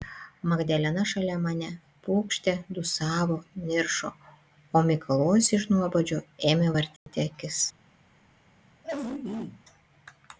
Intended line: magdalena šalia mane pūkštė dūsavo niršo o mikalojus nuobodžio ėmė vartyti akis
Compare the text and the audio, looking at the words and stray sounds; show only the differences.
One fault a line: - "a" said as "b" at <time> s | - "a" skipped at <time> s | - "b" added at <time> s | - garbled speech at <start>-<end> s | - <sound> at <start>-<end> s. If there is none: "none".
- "iš" added at 5.6 s
- dropout at 7.0-7.1 s
- throat clearing at 8.8-9.6 s